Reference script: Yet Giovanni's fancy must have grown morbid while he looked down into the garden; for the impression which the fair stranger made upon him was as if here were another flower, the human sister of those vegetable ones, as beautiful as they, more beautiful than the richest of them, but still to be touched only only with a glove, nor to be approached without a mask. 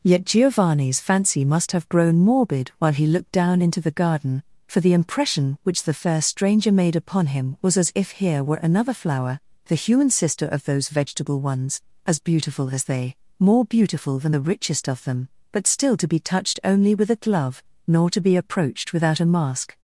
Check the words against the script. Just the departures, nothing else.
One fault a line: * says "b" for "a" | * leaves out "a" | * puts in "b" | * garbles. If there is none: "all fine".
* leaves out "only"